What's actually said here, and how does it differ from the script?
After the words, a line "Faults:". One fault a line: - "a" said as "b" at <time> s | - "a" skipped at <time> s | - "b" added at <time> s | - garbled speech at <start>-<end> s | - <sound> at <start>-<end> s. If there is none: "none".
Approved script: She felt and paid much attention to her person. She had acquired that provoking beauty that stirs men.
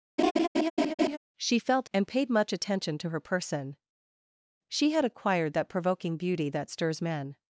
She felt and paid much attention to her person. She had acquired that provoking beauty that stirs men.
Faults:
- laugh at 0.2-1.2 s